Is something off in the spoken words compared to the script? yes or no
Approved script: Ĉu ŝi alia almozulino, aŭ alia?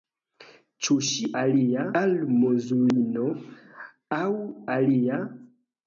no